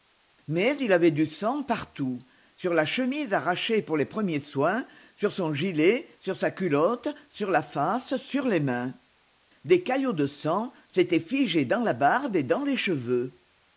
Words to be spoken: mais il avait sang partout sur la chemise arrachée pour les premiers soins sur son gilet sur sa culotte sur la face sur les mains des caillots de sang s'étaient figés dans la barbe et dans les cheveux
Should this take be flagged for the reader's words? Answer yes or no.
yes